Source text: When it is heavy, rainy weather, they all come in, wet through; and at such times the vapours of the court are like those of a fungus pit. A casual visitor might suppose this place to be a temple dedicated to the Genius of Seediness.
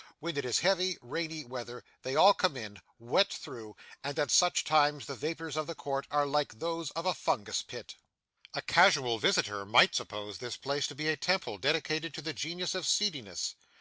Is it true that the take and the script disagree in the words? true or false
false